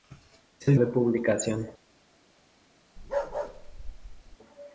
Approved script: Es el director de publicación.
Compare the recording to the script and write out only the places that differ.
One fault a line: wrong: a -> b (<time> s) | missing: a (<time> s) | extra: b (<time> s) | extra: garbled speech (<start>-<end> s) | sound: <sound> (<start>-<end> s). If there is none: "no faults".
missing: director (0.8 s)
sound: bark (3.0-4.4 s)